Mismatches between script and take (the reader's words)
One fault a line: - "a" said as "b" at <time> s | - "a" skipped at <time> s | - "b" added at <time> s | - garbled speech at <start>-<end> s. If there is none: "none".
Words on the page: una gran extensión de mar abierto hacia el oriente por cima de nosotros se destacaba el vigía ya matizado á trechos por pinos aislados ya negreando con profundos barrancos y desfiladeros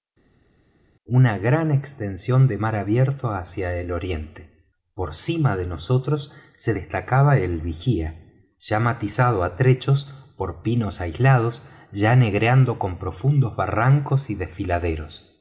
none